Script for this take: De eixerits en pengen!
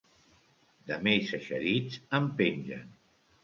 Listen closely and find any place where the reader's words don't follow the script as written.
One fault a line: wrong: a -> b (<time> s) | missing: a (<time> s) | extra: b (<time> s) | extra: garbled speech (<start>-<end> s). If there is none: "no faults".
extra: més (1.1 s)